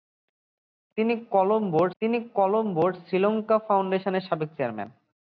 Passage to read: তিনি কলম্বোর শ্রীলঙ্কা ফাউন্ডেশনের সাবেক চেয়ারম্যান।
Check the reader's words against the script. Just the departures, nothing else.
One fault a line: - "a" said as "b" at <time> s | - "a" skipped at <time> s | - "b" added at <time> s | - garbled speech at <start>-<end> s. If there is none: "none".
- "তিনি কলম্বোর" added at 2.0 s